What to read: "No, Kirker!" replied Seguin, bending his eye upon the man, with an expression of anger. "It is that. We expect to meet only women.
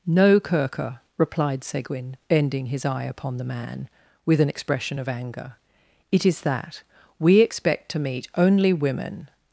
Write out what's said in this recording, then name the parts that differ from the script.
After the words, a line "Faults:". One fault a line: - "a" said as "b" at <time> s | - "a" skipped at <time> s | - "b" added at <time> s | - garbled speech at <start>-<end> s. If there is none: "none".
"No, Kirker!" replied Seguin, bending his eye upon the man, with an expression of anger. "It is that. We expect to meet only women.
Faults:
none